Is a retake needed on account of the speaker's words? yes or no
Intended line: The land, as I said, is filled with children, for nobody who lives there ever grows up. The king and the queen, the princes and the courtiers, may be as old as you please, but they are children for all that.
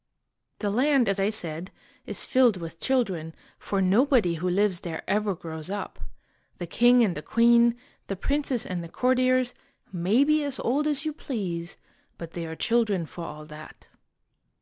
no